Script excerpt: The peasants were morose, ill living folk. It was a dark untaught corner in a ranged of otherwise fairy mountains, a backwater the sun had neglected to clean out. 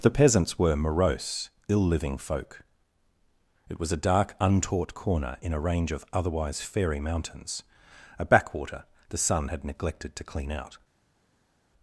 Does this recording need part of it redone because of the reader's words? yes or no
yes